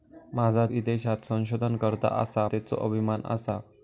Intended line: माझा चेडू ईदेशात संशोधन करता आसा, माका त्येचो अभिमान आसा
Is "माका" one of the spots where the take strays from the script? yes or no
yes